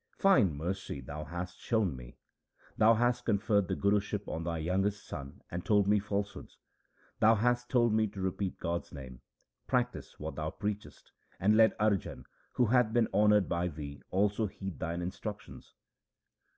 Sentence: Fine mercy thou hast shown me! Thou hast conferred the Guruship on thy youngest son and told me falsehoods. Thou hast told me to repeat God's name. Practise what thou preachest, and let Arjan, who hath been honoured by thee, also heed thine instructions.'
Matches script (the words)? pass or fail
pass